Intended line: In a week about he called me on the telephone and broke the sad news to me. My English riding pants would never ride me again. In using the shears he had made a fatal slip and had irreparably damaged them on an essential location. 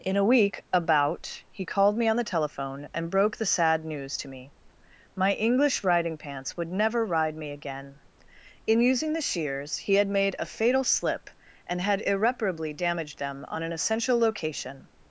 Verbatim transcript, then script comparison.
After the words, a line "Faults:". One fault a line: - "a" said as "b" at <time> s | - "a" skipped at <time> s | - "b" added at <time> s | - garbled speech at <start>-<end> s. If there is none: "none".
In a week about he called me on the telephone and broke the sad news to me. My English riding pants would never ride me again. In using the shears he had made a fatal slip and had irreparably damaged them on an essential location.
Faults:
none